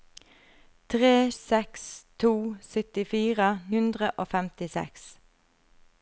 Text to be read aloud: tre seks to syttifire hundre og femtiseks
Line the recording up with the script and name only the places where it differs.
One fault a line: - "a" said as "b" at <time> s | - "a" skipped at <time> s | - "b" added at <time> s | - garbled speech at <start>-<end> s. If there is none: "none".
none